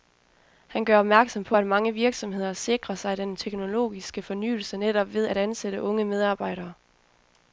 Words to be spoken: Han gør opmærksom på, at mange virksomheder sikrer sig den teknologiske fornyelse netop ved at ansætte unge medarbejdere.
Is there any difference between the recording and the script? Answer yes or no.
no